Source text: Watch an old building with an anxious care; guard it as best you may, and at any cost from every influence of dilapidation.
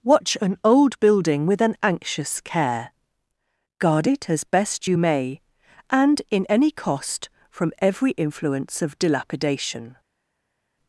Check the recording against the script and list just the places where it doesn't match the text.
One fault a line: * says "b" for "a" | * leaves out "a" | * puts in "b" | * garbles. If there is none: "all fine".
* says "in" for "at"